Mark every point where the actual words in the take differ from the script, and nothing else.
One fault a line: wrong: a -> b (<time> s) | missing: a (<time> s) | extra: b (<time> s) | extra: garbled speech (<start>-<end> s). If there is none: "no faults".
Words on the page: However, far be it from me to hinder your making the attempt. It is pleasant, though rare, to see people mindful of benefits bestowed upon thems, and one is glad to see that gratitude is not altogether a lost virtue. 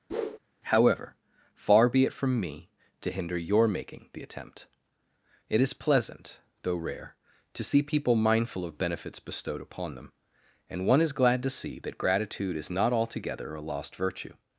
wrong: thems -> them (10.0 s)